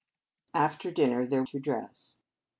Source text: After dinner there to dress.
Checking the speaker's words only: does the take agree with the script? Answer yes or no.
yes